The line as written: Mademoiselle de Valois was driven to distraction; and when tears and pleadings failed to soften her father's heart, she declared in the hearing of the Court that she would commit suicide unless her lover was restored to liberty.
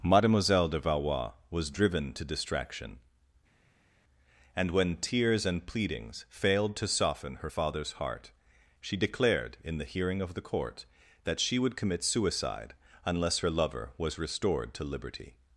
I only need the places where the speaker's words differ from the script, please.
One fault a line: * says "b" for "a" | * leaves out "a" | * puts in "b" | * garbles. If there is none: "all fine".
all fine